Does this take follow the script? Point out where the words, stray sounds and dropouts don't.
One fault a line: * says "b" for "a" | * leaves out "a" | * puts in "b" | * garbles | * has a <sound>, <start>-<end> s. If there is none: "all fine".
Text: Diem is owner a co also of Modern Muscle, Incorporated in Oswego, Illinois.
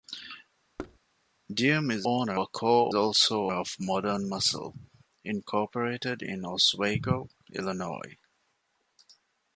* has a thud, 0.8-1.0 s